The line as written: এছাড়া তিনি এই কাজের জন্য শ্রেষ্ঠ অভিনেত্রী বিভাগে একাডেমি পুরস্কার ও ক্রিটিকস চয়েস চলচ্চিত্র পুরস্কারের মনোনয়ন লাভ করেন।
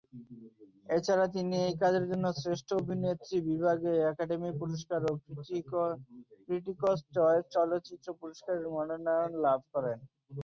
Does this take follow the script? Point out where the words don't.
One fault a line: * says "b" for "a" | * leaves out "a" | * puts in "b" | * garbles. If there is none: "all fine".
all fine